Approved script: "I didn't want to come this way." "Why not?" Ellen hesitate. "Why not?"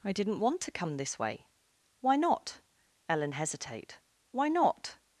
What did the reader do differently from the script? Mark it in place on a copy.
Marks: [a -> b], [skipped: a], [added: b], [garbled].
"I didn't want to come this way." "Why not?" Ellen hesitate. "Why not?"